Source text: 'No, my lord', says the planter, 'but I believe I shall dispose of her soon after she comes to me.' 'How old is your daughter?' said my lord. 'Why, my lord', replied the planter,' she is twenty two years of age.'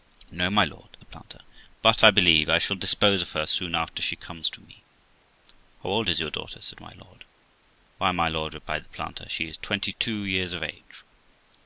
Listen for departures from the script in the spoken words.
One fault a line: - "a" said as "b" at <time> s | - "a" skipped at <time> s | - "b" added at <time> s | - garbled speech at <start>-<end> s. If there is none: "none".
- "says" skipped at 1.0 s